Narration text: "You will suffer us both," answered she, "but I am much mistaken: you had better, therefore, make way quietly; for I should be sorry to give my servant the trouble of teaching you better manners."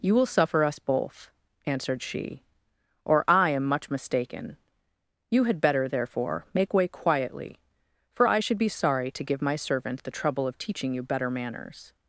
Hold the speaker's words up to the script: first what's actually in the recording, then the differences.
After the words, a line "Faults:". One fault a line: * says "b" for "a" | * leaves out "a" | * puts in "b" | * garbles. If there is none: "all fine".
"You will suffer us both," answered she, "or I am much mistaken: you had better, therefore, make way quietly; for I should be sorry to give my servant the trouble of teaching you better manners."
Faults:
* says "or" for "but"